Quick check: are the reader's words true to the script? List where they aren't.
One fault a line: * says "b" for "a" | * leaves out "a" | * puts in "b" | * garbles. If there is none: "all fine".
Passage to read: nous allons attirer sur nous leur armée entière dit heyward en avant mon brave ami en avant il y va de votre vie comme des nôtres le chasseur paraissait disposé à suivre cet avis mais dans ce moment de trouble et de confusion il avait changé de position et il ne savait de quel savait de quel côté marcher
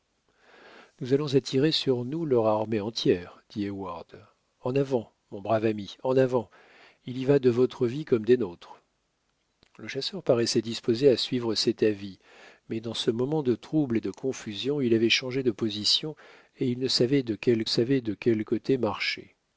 all fine